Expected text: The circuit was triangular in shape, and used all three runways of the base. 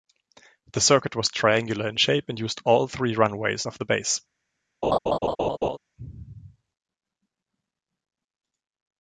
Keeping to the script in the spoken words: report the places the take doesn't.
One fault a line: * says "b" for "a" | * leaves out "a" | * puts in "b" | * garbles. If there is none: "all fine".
all fine